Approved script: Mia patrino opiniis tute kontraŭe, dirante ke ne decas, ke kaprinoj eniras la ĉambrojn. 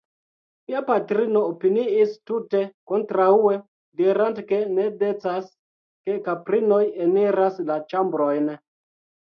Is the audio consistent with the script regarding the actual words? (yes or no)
yes